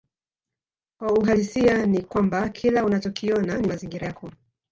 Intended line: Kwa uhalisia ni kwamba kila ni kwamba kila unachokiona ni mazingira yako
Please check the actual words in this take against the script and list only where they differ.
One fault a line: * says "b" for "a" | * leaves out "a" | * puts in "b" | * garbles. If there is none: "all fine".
* leaves out "ni kwamba kila"